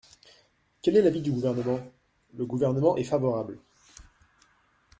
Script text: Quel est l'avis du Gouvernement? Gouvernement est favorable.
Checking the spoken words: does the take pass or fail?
fail